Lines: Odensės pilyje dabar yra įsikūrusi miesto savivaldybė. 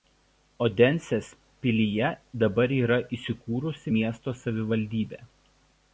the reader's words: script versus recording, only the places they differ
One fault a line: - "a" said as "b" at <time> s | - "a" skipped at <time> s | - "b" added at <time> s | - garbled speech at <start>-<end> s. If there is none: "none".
none